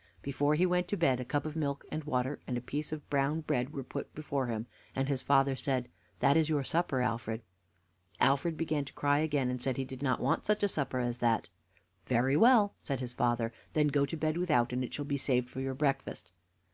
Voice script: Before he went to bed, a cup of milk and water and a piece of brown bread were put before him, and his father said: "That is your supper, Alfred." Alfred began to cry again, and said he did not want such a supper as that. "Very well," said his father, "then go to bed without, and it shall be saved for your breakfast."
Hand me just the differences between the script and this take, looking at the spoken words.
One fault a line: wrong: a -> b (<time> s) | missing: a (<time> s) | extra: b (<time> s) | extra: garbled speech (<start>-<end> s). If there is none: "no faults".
no faults